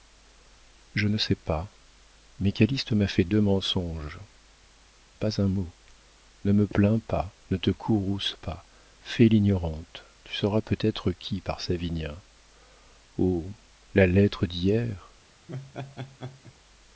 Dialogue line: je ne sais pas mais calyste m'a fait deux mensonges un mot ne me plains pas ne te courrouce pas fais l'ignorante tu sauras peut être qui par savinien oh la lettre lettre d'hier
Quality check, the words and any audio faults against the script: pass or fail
fail